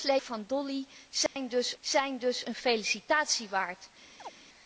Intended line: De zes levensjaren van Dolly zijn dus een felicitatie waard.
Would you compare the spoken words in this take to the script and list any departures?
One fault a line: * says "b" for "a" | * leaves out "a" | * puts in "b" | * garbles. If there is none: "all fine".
* leaves out "levensjaren"
* puts in "zijn dus"